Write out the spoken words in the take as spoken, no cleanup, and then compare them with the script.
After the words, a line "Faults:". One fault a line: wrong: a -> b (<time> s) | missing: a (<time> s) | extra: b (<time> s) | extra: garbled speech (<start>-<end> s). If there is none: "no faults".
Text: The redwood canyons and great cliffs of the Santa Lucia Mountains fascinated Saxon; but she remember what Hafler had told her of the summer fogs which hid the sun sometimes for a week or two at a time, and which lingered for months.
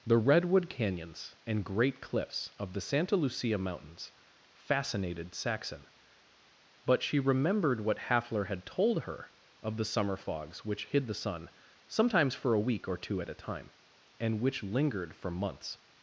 The redwood canyons and great cliffs of the Santa Lucia Mountains fascinated Saxon; but she remembered what Hafler had told her of the summer fogs which hid the sun sometimes for a week or two at a time, and which lingered for months.
Faults:
wrong: remember -> remembered (7.2 s)